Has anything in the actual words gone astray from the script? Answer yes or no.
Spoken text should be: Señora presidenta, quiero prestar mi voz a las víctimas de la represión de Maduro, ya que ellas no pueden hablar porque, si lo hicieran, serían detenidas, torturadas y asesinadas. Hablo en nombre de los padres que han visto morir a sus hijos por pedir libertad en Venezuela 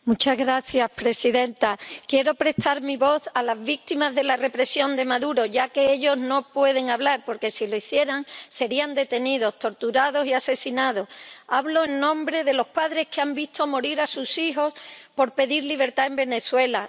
no